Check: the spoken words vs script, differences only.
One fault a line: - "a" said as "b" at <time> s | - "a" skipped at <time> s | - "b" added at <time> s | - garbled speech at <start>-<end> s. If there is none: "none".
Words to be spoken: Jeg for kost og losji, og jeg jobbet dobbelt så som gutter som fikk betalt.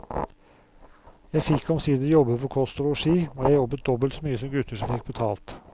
- "fikk omsider jobbe" added at 1.5 s
- "mye" added at 4.3 s